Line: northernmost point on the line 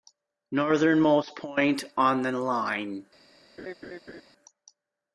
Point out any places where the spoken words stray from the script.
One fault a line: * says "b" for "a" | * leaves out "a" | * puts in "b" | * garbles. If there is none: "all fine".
all fine